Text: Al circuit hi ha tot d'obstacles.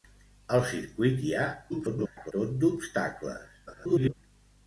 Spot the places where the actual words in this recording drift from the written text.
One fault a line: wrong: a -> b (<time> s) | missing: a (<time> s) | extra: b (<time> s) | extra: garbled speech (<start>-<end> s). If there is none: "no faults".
extra: garbled speech (1.7-2.3 s)
extra: garbled speech (3.7-4.1 s)